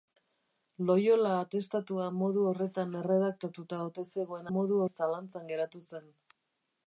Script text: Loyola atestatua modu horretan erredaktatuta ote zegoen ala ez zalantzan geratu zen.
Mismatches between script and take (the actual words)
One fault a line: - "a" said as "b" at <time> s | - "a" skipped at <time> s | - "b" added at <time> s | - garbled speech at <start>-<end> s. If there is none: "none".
- "ala" said as "modu" at 4.6 s